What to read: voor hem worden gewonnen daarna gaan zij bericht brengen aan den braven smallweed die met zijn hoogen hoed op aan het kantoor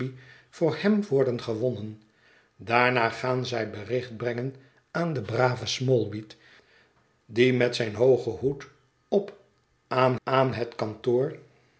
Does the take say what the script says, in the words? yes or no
no